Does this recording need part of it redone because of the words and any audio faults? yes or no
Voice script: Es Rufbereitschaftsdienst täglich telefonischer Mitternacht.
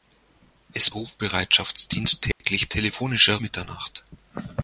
yes